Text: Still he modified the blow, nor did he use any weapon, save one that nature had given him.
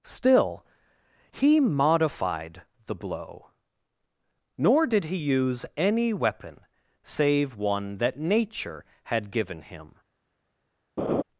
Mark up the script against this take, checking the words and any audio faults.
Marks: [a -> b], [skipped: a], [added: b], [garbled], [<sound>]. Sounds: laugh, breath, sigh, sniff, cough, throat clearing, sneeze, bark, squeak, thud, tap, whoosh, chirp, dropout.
Still he modified the blow, nor did he use any weapon, save one that nature had given him. [laugh]